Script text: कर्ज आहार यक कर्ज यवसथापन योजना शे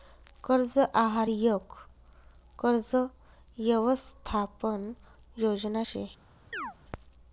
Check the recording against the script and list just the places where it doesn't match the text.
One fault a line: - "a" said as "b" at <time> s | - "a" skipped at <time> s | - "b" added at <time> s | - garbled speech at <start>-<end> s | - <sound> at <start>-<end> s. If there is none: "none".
- chirp at 6.5-6.7 s